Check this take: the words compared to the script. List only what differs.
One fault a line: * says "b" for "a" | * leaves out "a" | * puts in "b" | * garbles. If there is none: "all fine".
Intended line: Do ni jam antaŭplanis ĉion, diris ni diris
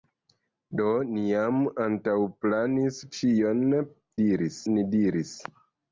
all fine